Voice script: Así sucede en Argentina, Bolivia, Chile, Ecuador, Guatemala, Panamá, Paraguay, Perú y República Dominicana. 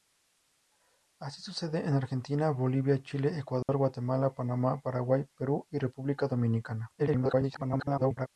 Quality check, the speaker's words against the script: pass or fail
fail